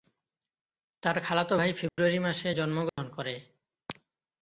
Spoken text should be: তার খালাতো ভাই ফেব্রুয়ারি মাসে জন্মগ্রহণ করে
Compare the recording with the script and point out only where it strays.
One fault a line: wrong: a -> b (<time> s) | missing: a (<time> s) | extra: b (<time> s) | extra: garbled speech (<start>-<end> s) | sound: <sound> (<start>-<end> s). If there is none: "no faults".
sound: dropout (1.9-2.0 s)
sound: dropout (2.9-3.0 s)